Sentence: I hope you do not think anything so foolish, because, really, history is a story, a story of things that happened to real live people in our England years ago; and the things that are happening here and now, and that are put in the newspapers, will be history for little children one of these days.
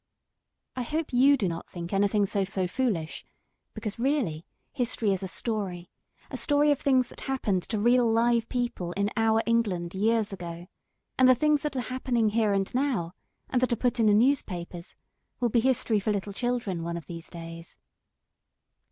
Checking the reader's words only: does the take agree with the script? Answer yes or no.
no